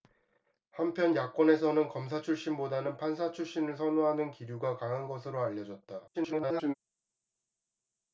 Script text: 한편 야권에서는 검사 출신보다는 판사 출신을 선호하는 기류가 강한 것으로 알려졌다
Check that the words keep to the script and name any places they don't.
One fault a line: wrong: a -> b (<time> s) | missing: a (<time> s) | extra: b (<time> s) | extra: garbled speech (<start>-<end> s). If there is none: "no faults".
extra: garbled speech (6.1-6.7 s)